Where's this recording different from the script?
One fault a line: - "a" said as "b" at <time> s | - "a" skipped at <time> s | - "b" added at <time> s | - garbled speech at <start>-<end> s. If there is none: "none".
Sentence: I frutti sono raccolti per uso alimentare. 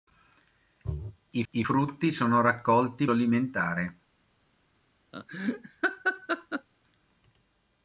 - "I" added at 1.5 s
- "per uso" skipped at 3.1 s